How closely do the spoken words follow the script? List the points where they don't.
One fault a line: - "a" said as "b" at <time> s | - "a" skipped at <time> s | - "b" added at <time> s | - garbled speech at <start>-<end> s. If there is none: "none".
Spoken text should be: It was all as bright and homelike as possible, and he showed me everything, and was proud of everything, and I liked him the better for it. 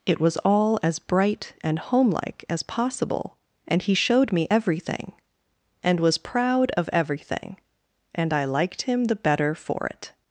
none